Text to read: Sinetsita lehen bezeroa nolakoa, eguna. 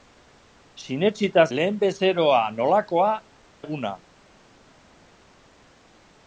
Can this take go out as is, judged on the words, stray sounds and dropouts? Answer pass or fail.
pass